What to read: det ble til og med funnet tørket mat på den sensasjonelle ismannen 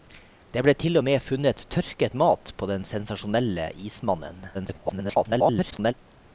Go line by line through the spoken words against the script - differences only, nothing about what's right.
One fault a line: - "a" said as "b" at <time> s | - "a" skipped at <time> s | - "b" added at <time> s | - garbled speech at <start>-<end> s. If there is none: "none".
- garbled speech at 4.5-5.9 s